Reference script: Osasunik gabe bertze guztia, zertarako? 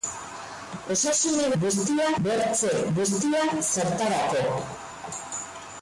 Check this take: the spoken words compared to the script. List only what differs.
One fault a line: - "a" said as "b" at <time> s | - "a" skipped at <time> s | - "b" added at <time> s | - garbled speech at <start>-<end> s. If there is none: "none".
- "gabe" said as "guztia" at 1.6 s